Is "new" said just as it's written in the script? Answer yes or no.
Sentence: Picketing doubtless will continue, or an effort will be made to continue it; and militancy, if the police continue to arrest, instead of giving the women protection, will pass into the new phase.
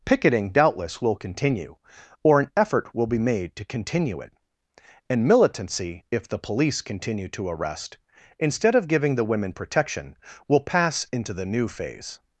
yes